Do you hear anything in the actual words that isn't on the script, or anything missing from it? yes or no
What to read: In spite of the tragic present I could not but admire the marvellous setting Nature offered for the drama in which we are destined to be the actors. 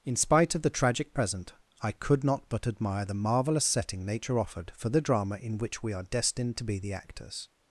no